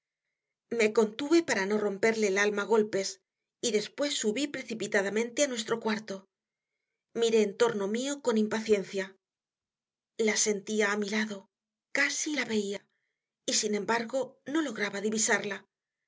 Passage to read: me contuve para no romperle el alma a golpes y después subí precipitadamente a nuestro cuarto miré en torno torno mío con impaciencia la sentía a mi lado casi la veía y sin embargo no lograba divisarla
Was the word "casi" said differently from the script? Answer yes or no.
no